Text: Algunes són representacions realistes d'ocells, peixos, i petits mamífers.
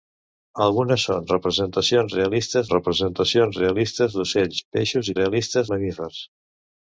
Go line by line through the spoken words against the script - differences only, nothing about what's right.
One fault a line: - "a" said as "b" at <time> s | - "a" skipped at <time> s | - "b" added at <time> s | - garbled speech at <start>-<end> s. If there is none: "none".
- "representacions realistes" added at 2.7 s
- "petits" said as "realistes" at 5.2 s